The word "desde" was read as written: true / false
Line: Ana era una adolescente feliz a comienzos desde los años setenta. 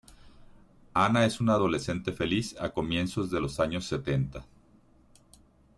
false